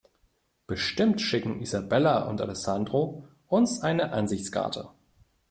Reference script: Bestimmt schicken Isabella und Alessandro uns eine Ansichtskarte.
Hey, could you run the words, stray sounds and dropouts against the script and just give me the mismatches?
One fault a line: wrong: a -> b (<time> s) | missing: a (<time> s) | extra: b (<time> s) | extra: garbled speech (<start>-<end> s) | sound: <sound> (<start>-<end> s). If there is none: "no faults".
no faults